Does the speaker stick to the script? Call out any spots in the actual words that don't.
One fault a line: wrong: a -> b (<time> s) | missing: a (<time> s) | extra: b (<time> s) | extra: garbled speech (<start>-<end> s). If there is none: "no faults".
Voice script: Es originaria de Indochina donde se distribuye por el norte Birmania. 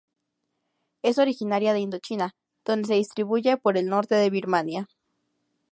extra: de (4.1 s)